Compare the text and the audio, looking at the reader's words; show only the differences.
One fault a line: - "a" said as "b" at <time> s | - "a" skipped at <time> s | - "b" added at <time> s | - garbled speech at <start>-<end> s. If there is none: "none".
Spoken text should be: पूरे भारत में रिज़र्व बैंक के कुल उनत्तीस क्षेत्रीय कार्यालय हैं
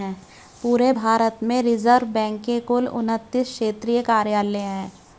none